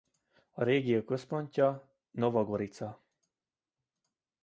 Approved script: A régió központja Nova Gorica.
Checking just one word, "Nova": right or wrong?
right